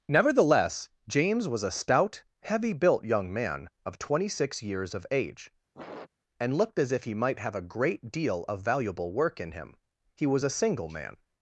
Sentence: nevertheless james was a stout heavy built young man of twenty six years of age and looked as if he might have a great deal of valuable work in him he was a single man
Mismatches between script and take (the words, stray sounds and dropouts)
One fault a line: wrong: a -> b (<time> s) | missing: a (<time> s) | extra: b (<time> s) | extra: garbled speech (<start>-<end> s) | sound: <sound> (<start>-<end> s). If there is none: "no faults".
sound: sniff (5.8-6.1 s)